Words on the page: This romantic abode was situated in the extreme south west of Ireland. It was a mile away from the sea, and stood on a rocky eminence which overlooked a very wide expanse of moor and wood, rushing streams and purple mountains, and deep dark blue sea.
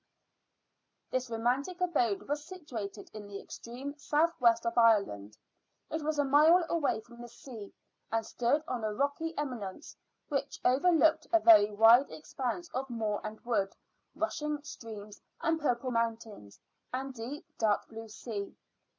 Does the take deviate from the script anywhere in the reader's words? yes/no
no